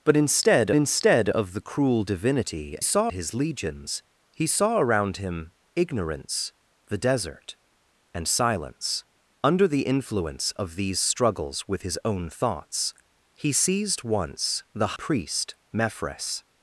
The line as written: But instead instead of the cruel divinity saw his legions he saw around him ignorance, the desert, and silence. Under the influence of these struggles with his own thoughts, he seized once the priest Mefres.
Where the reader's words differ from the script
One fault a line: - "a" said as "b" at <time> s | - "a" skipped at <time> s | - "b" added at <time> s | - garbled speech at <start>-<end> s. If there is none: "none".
none